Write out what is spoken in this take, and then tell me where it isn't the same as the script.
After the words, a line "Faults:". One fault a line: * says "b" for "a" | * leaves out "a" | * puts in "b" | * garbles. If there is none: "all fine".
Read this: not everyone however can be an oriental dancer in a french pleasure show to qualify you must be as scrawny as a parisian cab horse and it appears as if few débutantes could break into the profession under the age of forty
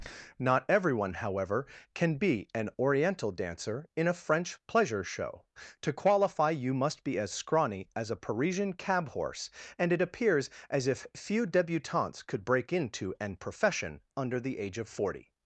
not everyone however can be an oriental dancer in a french pleasure show to qualify you must be as scrawny as a parisian cab horse and it appears as if few débutantes could break into an profession under the age of forty
Faults:
* says "an" for "the"